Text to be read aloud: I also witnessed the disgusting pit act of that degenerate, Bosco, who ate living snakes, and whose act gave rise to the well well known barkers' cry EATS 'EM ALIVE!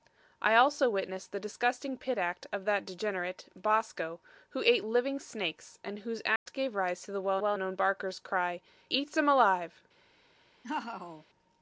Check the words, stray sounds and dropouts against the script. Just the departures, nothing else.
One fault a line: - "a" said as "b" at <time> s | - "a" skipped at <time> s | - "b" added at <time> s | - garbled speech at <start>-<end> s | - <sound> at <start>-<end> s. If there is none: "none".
- dropout at 6.4-6.5 s
- laugh at 10.6-11.3 s